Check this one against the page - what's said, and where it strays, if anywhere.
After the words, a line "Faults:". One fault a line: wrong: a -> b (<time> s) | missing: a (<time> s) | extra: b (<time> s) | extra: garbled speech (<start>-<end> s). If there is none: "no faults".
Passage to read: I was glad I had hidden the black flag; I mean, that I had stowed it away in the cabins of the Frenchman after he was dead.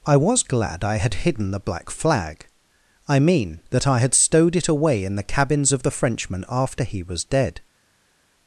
I was glad I had hidden the black flag; I mean, that I had stowed it away in the cabins of the Frenchman after he was dead.
Faults:
no faults